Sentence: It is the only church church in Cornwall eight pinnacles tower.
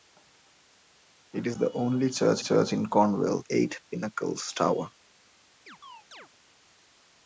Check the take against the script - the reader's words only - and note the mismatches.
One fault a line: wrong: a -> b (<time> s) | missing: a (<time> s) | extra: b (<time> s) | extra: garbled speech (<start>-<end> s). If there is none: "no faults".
no faults